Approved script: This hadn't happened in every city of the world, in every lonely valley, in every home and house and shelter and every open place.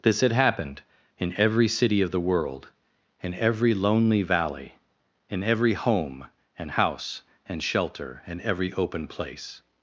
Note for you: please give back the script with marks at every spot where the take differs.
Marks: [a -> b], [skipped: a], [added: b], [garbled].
This [hadn't -> had] happened in every city of the world, in every lonely valley, in every home and house and shelter and every open place.